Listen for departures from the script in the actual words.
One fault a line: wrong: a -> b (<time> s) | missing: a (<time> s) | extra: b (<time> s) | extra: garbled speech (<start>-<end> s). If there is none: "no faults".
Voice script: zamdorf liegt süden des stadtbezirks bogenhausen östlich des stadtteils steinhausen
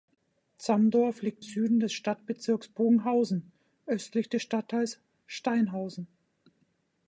no faults